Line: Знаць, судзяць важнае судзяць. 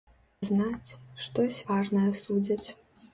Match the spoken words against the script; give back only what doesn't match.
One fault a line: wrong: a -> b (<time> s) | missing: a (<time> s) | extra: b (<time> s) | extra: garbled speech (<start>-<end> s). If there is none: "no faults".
wrong: судзяць -> штось (1.2 s)